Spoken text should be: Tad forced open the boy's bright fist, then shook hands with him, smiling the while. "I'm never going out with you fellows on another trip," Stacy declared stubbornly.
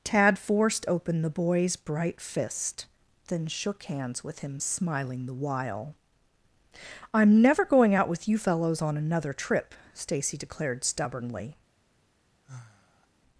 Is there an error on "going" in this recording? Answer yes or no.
no